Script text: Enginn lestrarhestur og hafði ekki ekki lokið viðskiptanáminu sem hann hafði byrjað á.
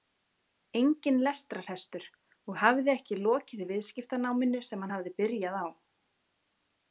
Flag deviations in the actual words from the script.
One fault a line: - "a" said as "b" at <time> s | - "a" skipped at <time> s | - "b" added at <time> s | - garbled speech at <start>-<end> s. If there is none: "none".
- "ekki" skipped at 3.2 s